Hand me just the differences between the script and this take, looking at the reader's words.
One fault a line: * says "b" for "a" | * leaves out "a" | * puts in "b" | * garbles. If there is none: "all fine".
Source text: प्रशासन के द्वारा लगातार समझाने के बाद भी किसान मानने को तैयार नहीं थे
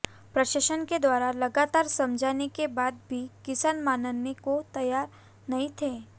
all fine